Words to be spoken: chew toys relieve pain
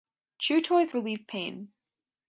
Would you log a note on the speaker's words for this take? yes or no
no